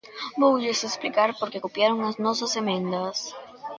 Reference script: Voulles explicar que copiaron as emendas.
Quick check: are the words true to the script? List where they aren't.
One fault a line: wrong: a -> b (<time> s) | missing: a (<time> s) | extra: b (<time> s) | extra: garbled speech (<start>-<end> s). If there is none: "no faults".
extra: por (1.4 s)
extra: nosas (2.2 s)